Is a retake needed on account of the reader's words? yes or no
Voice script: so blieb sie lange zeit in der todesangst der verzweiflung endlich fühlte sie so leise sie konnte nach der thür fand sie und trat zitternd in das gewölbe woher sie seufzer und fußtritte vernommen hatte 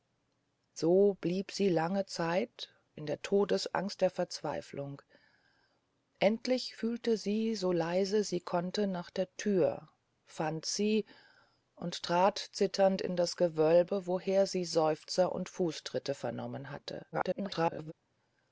yes